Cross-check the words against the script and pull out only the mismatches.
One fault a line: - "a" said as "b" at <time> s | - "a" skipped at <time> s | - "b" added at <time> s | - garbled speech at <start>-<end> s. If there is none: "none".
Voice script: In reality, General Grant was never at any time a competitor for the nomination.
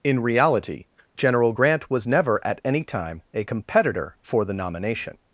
none